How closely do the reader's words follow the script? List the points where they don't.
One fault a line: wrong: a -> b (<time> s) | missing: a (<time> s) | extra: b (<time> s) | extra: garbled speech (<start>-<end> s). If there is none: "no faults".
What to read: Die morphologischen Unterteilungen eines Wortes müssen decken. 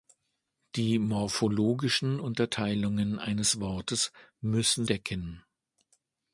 no faults